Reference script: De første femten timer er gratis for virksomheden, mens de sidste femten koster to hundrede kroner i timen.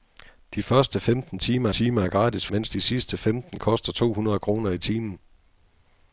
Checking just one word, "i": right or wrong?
right